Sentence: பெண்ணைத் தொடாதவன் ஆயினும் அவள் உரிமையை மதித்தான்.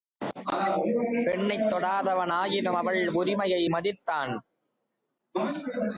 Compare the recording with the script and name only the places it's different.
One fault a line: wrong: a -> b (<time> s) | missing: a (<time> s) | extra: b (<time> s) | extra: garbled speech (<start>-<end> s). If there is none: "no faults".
no faults